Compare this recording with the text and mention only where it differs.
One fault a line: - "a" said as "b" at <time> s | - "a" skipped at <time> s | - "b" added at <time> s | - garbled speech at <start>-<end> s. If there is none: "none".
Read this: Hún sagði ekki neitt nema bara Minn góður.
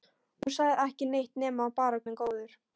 none